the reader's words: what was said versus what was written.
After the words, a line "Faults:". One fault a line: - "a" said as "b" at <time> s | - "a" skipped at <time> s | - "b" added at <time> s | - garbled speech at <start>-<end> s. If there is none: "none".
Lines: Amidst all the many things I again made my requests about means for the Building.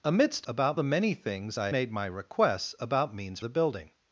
Amidst about the many things I made my requests about means the Building.
Faults:
- "all" said as "about" at 0.4 s
- "again" skipped at 1.7 s
- "for" skipped at 3.4 s